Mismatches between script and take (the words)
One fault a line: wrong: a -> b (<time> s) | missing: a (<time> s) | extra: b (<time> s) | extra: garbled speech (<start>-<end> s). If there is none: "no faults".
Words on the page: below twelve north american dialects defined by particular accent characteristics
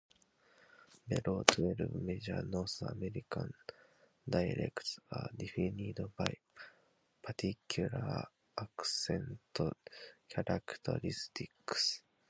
extra: major (1.9 s)
extra: are (5.1 s)